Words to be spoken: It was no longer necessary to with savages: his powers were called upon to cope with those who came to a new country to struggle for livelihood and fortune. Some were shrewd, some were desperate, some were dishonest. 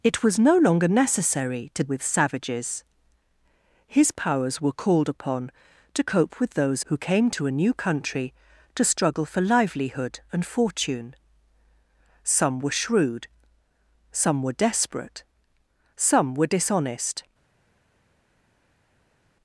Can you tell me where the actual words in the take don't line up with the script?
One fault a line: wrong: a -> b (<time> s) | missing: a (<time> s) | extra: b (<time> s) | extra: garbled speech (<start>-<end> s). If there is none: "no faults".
no faults